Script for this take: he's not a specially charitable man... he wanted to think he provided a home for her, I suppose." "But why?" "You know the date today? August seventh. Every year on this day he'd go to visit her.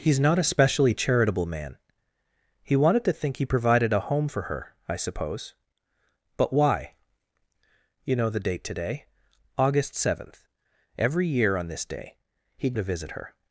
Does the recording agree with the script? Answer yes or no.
no